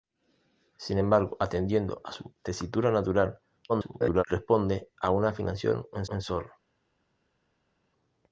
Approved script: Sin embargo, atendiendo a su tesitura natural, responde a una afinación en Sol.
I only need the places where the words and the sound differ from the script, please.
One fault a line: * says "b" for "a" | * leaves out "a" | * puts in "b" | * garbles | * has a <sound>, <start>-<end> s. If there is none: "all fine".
* garbles
* puts in "en"